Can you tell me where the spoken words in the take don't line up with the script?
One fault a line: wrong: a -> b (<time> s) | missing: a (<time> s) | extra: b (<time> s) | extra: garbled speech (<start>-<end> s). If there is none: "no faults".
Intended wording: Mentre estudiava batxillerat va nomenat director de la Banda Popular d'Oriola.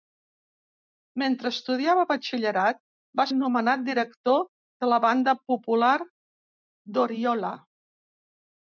no faults